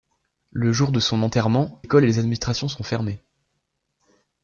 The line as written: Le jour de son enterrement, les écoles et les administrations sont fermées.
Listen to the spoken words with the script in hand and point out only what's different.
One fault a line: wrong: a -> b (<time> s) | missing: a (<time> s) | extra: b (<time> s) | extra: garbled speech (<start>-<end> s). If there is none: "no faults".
missing: les (1.8 s)